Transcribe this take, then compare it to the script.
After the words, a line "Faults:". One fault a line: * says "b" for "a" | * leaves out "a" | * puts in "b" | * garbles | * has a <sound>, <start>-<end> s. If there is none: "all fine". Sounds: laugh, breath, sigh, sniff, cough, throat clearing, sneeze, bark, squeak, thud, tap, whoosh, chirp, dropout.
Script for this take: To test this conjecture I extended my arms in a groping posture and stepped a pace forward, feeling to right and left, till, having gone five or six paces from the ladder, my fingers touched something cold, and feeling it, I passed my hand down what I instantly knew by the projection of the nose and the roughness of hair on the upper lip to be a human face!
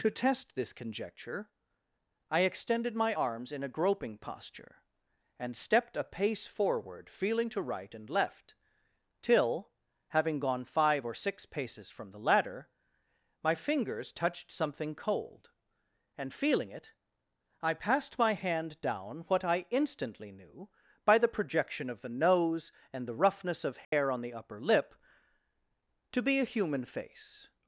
To test this conjecture I extended my arms in a groping posture and stepped a pace forward, feeling to right and left, till, having gone five or six paces from the ladder, my fingers touched something cold, and feeling it, I passed my hand down what I instantly knew by the projection of the nose and the roughness of hair on the upper lip to be a human face!
Faults:
* has a dropout, 23.8-23.9 s